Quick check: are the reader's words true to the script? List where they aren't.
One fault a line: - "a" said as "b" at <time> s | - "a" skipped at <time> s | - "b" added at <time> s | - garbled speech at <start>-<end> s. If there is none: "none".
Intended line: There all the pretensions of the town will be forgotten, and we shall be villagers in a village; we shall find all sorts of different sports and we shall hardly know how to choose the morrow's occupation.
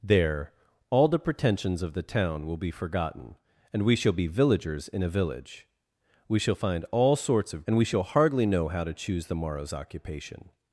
- "different sports" skipped at 7.7 s